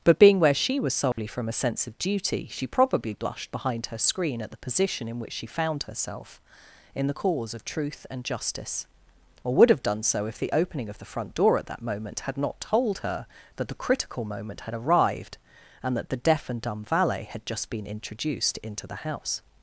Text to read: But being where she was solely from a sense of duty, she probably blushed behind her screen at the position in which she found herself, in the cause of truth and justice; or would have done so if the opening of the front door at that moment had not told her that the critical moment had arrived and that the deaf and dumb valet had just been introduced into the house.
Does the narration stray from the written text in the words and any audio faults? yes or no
yes